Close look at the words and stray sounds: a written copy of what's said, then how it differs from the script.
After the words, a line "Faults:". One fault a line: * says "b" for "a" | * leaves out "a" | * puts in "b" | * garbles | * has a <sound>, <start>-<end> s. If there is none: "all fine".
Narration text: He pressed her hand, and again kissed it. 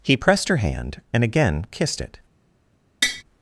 He pressed her hand, and again kissed it.
Faults:
* has a tap, 3.0-3.2 s